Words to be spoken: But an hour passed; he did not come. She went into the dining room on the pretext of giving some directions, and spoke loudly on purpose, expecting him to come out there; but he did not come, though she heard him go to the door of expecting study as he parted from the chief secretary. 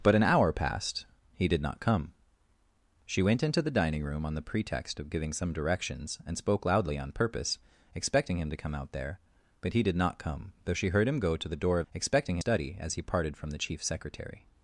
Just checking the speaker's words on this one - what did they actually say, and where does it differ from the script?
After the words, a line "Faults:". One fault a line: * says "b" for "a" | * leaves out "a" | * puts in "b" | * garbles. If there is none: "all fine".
But an hour passed; he did not come. She went into the dining room on the pretext of giving some directions, and spoke loudly on purpose, expecting him to come out there; but he did not come, though she heard him go to the door of expecting study as he parted from the chief secretary.
Faults:
all fine